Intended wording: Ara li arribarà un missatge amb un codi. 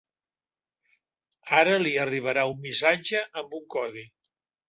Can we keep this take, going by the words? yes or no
yes